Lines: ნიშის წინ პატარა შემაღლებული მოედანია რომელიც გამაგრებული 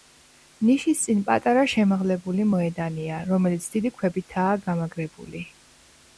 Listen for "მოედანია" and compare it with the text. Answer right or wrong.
right